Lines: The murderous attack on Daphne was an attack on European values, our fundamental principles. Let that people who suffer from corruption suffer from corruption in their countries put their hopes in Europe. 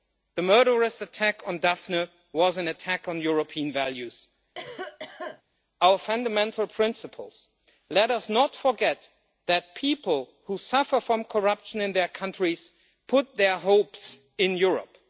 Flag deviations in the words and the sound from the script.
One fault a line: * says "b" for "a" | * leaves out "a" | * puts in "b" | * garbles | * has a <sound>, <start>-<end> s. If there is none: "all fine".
* has a cough, 4.5-5.4 s
* puts in "us not forget"
* leaves out "suffer from corruption"